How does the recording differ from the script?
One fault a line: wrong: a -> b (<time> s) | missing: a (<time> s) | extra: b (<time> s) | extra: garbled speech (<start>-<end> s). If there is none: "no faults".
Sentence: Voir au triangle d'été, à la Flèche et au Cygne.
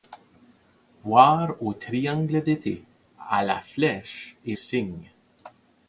missing: au (4.6 s)